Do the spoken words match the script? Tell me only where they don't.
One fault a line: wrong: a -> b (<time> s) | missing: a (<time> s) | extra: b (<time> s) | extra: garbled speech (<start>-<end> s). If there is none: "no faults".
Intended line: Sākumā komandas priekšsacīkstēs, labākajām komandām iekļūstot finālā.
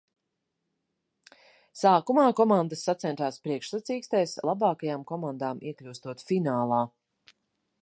extra: sacentās (2.9 s)